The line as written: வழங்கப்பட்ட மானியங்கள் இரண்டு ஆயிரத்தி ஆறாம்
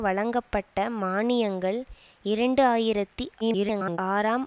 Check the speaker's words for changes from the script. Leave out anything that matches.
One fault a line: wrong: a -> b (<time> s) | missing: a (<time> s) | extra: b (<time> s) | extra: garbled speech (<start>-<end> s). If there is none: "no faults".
extra: garbled speech (3.4-4.0 s)